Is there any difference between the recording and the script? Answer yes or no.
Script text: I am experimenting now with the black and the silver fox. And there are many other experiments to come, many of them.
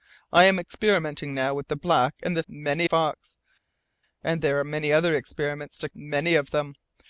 yes